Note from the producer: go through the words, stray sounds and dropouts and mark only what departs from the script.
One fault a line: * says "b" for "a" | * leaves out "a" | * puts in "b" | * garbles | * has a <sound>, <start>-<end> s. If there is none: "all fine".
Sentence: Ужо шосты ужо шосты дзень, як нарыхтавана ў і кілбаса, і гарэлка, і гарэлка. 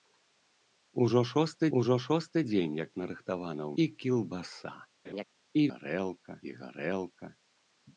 * has a laugh, 5.0-5.2 s